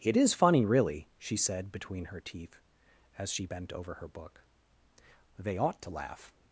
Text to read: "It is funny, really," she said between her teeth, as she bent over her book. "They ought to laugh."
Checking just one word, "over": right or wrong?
right